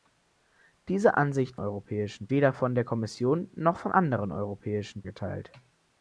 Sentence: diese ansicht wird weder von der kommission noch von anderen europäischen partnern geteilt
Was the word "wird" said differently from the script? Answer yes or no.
yes